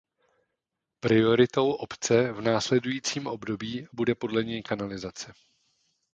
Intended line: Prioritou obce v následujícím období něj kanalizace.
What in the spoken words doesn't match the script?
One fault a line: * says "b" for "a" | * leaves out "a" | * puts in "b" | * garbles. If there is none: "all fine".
* puts in "bude podle"